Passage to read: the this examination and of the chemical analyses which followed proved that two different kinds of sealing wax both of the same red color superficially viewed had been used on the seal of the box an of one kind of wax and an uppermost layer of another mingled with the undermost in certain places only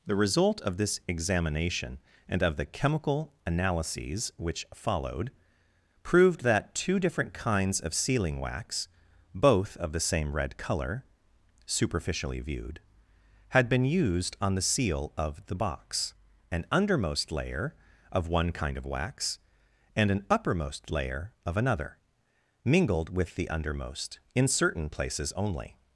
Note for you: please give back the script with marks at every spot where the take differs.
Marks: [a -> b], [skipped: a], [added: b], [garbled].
the [added: result of] this examination and of the chemical analyses which followed proved that two different kinds of sealing wax both of the same red color superficially viewed had been used on the seal of the box an [added: undermost layer] of one kind of wax and an uppermost layer of another mingled with the undermost in certain places only